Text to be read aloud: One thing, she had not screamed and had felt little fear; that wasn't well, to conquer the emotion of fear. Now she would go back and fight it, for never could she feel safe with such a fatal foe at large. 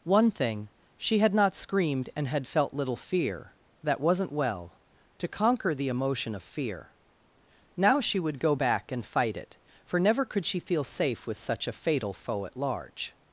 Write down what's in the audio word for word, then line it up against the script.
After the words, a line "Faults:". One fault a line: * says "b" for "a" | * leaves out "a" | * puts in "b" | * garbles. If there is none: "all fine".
One thing, she had not screamed and had felt little fear; that wasn't well, to conquer the emotion of fear. Now she would go back and fight it, for never could she feel safe with such a fatal foe at large.
Faults:
all fine